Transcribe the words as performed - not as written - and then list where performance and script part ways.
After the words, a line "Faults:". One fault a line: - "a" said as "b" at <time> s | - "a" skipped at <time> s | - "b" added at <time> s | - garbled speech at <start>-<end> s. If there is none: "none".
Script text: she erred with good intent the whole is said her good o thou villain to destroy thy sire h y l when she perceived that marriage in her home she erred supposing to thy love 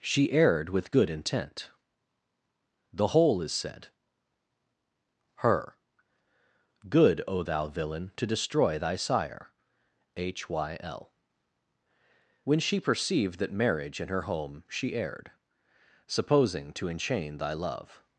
she erred with good intent the whole is said her good o thou villain to destroy thy sire h y l when she perceived that marriage in her home she erred supposing to enchain thy love
Faults:
- "enchain" added at 16.9 s